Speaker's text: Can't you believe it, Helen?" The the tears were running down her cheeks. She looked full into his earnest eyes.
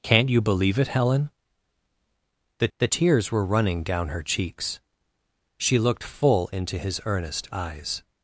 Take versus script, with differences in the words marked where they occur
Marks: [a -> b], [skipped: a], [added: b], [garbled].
Can't you believe it, Helen?" The the tears were running down her cheeks. She looked full into his earnest eyes.